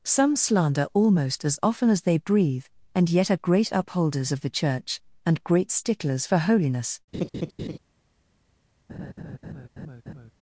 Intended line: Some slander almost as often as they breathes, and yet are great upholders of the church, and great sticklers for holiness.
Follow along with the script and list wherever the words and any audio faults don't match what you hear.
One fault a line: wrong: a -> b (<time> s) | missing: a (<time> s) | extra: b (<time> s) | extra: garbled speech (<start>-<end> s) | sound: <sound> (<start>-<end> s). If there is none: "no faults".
wrong: breathes -> breathe (2.2 s)
sound: laugh (7.1-7.8 s)
sound: laugh (8.9-10.3 s)